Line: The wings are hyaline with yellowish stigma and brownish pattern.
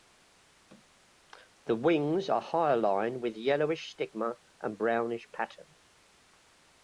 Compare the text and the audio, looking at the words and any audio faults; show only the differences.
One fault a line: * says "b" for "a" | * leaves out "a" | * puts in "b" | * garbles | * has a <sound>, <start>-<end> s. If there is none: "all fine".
all fine